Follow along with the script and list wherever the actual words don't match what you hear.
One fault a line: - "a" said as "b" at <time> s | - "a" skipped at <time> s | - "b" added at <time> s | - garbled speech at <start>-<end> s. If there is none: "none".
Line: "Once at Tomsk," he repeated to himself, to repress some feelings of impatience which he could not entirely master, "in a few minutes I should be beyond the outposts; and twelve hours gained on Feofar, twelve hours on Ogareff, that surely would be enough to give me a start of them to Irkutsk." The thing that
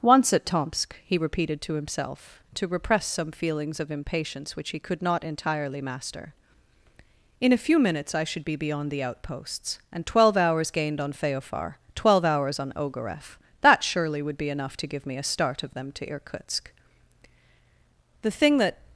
none